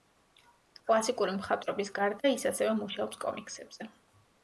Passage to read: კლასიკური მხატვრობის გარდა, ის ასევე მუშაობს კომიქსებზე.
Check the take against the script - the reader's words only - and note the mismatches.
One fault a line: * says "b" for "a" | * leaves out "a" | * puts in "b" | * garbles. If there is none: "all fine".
all fine